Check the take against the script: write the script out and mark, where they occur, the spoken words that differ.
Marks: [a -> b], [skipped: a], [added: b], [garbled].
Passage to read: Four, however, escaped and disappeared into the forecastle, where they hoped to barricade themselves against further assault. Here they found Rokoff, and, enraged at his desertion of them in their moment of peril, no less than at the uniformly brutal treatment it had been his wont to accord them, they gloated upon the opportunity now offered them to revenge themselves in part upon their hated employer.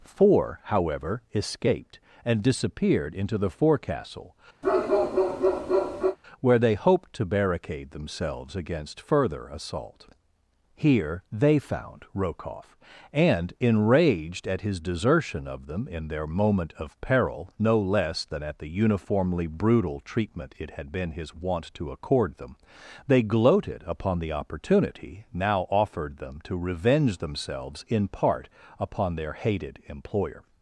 Four, however, escaped and disappeared into the forecastle, where they hoped to barricade themselves against further assault. Here they found Rokoff, and, enraged at his desertion of them in their moment of peril, no less than at the uniformly brutal treatment it had been his wont to accord them, they gloated upon the opportunity now offered them to revenge themselves in part upon their hated employer.